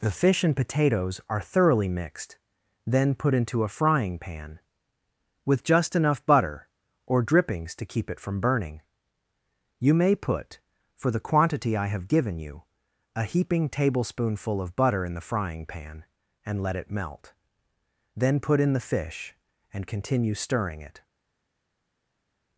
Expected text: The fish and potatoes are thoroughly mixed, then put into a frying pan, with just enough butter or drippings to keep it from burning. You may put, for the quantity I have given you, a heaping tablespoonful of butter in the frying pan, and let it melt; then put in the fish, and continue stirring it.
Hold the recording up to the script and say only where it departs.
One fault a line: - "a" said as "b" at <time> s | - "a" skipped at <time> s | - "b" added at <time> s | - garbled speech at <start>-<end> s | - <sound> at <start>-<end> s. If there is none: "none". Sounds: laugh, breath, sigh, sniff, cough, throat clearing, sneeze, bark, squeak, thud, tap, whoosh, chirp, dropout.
none